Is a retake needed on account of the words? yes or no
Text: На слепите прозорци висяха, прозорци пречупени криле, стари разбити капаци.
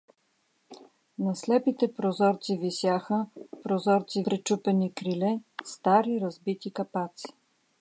no